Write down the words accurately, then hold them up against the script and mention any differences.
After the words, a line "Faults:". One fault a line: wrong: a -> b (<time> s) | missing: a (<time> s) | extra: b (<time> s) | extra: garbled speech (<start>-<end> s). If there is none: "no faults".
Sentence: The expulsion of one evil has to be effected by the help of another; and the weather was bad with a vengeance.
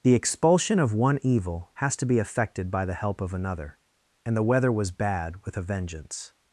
The expulsion of one evil has to be effected by the help of another; and the weather was bad with a vengeance.
Faults:
no faults